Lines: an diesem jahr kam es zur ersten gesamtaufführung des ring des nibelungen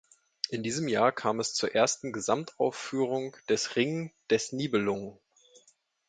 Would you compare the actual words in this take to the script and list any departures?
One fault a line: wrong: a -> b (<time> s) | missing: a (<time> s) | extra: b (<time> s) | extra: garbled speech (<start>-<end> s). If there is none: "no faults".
wrong: an -> in (0.5 s)